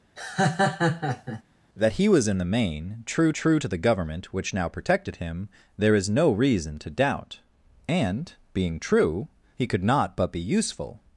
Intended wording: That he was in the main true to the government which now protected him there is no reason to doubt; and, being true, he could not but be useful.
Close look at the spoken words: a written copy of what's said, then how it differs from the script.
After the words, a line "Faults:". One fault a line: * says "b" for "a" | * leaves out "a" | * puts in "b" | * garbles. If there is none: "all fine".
That he was in the main true true to the government which now protected him there is no reason to doubt; and, being true, he could not but be useful.
Faults:
* puts in "true"